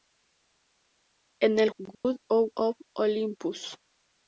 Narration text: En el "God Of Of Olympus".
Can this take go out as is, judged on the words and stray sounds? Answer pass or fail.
fail